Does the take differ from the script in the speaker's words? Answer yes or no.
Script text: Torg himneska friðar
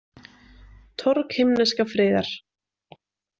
no